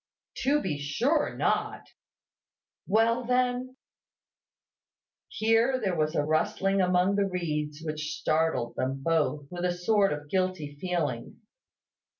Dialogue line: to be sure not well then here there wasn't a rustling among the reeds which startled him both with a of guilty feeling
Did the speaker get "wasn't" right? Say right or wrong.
wrong